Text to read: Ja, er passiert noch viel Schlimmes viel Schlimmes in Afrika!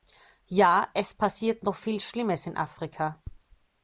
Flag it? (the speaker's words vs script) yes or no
yes